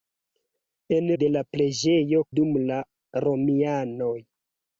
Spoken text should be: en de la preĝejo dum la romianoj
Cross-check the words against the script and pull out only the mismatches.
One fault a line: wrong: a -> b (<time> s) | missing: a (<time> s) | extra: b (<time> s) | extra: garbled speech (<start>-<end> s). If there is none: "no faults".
no faults